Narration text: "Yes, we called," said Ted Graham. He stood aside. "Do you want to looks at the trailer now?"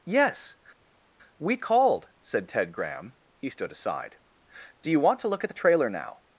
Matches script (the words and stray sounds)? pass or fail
fail